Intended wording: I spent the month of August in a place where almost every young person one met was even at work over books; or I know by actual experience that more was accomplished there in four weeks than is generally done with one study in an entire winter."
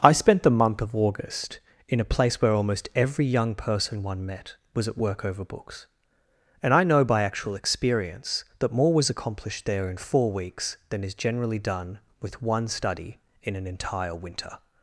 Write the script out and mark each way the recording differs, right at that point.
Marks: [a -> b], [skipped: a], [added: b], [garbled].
I spent the month of August in a place where almost every young person one met was [skipped: even] at work over books; [or -> and] I know by actual experience that more was accomplished there in four weeks than is generally done with one study in an entire winter."